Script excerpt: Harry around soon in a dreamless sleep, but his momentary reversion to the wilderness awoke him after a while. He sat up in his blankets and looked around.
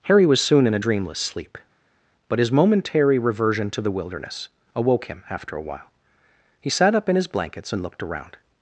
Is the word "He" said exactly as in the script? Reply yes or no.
yes